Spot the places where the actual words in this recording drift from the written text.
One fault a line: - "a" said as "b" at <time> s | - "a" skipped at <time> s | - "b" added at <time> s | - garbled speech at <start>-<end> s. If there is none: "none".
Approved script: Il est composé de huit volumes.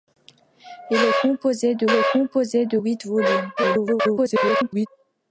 - "est composé de" added at 1.9 s
- garbled speech at 3.6-4.9 s